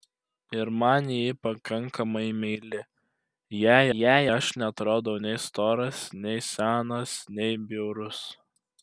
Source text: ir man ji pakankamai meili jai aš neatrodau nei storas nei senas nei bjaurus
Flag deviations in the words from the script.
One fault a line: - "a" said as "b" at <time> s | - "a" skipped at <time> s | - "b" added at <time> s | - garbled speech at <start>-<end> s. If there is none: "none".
- "jai" added at 4.0 s